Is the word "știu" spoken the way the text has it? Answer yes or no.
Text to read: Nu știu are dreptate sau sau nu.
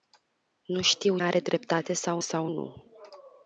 yes